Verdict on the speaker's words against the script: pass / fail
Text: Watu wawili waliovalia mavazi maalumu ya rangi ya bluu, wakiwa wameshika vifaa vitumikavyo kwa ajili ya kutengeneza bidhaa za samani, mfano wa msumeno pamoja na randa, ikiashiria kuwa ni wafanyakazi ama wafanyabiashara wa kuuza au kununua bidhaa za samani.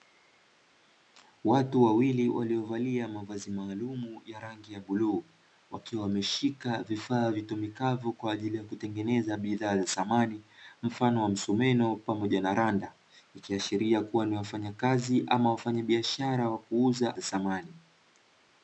fail